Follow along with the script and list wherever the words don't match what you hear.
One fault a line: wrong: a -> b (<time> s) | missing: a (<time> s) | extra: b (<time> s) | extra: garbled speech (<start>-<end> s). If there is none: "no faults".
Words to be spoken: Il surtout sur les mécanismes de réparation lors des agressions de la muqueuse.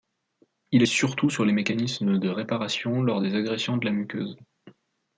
no faults